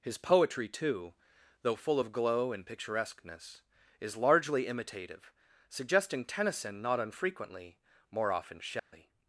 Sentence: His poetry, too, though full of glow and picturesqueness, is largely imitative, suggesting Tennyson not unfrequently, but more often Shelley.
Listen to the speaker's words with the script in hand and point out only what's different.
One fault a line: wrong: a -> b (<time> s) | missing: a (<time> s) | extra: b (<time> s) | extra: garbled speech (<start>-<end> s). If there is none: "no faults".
missing: but (7.8 s)